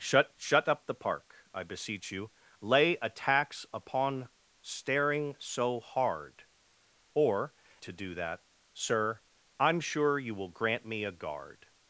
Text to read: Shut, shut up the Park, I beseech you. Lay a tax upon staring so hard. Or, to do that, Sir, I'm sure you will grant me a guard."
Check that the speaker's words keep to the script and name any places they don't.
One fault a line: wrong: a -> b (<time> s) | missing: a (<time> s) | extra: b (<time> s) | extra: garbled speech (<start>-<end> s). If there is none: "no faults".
no faults